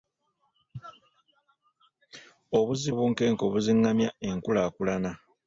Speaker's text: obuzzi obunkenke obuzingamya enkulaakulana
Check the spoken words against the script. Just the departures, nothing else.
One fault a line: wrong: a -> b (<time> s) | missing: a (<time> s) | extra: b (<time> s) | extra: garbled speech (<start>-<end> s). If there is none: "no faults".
no faults